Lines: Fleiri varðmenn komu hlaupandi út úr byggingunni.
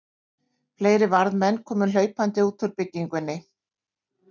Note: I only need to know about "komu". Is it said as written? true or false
true